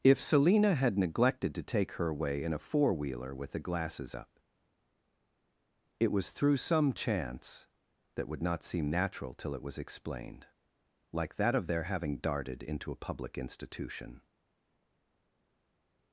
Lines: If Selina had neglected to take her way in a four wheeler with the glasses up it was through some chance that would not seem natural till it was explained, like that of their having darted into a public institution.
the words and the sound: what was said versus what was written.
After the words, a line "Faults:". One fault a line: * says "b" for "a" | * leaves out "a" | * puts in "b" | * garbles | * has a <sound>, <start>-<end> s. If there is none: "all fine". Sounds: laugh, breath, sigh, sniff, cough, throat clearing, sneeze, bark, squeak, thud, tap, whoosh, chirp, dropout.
If Selina had neglected to take her away in a four wheeler with the glasses up it was through some chance that would not seem natural till it was explained, like that of their having darted into a public institution.
Faults:
* says "away" for "way"